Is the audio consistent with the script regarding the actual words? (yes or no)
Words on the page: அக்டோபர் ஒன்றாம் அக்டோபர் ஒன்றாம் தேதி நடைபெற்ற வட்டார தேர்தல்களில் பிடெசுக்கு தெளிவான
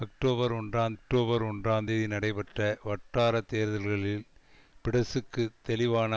yes